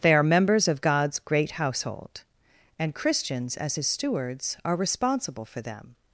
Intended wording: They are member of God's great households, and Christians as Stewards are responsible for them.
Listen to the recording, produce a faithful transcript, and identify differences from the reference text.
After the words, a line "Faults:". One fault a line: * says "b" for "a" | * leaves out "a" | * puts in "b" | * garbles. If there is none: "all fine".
They are members of God's great household, and Christians as His stewards are responsible for them.
Faults:
* says "members" for "member"
* says "household" for "households"
* puts in "His"